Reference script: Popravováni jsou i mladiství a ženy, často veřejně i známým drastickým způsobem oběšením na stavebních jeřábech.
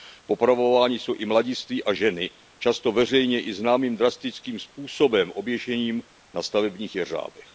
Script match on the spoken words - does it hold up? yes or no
yes